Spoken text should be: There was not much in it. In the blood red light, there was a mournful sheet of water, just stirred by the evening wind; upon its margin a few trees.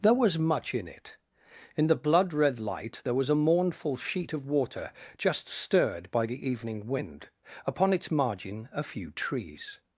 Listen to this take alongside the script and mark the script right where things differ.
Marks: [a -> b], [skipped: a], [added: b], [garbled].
There was [skipped: not] much in it. In the blood red light, there was a mournful sheet of water, just stirred by the evening wind; upon its margin a few trees.